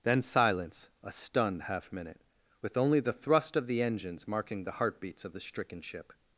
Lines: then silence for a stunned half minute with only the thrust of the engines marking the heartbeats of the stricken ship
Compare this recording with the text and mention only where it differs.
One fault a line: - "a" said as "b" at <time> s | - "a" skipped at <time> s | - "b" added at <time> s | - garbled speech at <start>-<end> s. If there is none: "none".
- "for" skipped at 0.9 s